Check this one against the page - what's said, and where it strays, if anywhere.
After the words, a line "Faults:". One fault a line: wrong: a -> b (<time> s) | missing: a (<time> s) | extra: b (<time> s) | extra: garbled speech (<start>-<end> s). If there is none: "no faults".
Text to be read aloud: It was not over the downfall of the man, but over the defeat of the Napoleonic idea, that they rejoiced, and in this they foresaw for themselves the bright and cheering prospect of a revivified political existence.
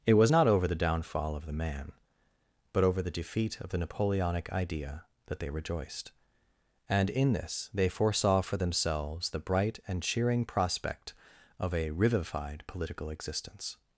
It was not over the downfall of the man, but over the defeat of the Napoleonic idea, that they rejoiced, and in this they foresaw for themselves the bright and cheering prospect of a revivified political existence.
Faults:
no faults